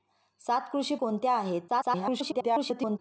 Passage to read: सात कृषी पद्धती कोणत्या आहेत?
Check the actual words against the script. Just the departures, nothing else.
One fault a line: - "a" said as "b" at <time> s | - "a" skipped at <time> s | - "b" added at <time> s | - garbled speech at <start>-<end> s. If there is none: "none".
- "पद्धती" skipped at 0.9 s
- garbled speech at 1.7-3.0 s